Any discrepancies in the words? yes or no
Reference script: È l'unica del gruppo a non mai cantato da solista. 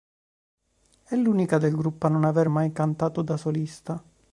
yes